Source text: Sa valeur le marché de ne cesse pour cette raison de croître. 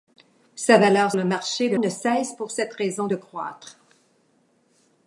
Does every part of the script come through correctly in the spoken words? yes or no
yes